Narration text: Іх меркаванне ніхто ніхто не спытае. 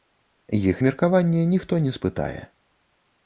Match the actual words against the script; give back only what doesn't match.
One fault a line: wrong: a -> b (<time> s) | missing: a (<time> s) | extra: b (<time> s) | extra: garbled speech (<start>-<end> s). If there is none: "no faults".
missing: ніхто (1.8 s)